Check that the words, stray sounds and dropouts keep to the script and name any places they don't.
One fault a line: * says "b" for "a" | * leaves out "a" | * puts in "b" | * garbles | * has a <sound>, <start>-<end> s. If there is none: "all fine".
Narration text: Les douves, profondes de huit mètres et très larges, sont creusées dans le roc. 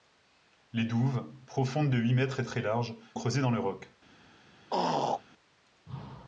* leaves out "sont"
* has a throat clearing, 4.7-5.2 s